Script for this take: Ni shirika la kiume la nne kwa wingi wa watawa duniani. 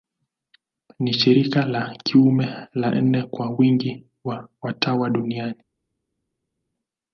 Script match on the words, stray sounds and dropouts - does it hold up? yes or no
yes